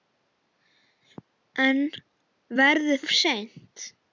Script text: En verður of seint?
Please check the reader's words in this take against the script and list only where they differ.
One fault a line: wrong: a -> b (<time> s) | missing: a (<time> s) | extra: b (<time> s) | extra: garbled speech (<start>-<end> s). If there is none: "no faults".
no faults